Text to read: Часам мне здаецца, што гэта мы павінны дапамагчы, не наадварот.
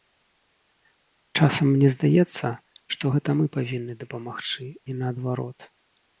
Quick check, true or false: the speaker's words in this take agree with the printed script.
true